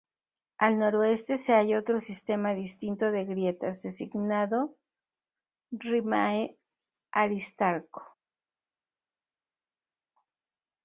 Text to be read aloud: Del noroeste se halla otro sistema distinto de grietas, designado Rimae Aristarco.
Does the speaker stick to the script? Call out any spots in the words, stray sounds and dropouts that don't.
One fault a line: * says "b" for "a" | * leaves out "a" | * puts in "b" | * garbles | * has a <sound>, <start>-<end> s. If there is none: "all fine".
* says "Al" for "Del"